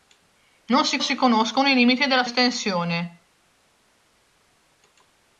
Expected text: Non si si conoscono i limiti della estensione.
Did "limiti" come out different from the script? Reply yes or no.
no